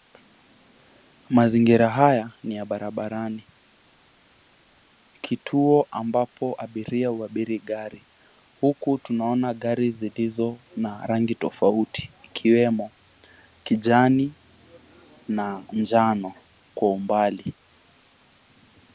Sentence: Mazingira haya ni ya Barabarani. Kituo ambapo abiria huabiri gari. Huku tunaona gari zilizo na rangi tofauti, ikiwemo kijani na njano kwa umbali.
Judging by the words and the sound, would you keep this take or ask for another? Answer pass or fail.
pass